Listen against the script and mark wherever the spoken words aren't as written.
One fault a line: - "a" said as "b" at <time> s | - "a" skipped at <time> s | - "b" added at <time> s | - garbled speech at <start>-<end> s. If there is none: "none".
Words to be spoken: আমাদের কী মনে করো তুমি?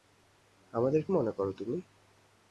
- "কী" skipped at 1.0 s